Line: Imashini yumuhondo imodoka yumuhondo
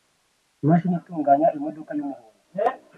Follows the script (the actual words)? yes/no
no